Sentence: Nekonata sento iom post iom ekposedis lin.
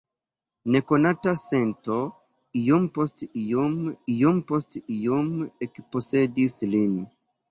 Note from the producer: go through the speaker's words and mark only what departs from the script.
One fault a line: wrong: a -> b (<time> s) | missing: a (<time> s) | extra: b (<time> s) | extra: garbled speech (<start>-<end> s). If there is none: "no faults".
extra: iom post iom (4.1 s)